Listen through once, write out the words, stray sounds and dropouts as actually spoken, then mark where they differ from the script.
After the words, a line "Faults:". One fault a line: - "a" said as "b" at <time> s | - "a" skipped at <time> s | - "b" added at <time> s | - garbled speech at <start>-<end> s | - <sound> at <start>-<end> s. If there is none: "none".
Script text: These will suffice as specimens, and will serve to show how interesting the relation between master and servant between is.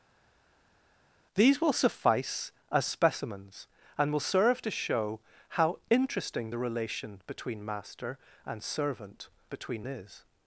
These will suffice as specimens, and will serve to show how interesting the relation between master and servant between is.
Faults:
none